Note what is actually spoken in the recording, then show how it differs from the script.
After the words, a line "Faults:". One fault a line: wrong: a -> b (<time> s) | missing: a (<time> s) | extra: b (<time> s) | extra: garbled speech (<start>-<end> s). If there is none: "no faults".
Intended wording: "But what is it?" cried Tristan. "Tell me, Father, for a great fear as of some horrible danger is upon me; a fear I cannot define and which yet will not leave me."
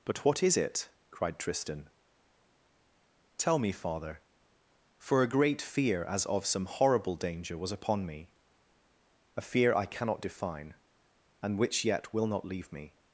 "But what is it?" cried Tristan. "Tell me, Father, for a great fear as of some horrible danger was upon me; a fear I cannot define and which yet will not leave me."
Faults:
wrong: is -> was (7.6 s)